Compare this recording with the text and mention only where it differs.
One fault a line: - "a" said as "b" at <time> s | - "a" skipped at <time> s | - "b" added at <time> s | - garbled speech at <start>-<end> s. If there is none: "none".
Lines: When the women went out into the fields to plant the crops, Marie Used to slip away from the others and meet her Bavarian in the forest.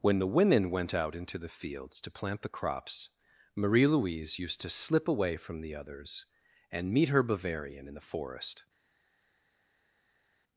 - "Louise" added at 3.9 s